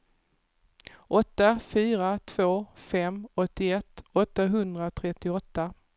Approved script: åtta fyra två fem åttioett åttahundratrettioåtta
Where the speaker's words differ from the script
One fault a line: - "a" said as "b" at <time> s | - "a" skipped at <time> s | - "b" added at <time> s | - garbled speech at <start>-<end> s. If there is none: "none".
none